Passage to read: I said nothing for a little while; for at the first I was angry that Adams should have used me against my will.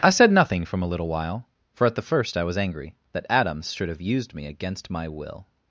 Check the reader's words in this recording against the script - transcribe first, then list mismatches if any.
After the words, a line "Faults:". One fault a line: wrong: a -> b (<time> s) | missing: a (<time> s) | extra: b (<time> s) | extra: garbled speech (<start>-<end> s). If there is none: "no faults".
I said nothing from a little while; for at the first I was angry that Adams should have used me against my will.
Faults:
wrong: for -> from (0.7 s)